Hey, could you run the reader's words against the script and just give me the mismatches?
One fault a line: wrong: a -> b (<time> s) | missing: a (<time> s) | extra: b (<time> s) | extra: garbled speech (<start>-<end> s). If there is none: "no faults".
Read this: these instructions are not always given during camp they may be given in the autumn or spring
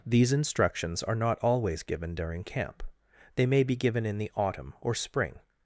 no faults